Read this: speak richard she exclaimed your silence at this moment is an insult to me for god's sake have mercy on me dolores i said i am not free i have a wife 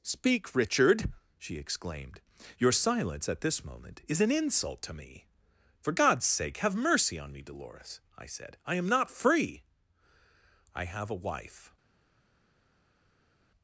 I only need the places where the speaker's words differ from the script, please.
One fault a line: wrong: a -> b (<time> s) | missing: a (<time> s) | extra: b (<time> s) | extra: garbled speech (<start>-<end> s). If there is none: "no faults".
no faults